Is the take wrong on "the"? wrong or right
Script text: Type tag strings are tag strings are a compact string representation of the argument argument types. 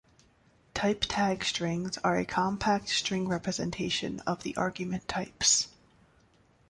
right